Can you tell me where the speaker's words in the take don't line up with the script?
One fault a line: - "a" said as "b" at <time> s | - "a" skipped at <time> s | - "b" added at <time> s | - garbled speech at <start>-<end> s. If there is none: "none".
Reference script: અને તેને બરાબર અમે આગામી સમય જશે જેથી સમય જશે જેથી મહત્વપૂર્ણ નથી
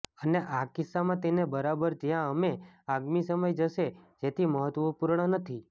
- "આ કિસ્સામાં" added at 0.5 s
- "જ્યાં" added at 2.0 s
- "સમય જશે જેથી" skipped at 4.5 s